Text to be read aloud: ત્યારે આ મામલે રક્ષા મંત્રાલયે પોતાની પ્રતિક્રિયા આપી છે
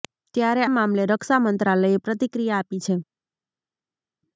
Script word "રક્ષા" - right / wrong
right